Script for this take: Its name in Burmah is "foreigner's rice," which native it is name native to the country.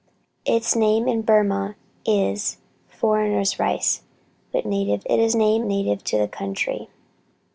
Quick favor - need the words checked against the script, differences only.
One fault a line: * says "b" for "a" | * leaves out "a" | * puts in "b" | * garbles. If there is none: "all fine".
all fine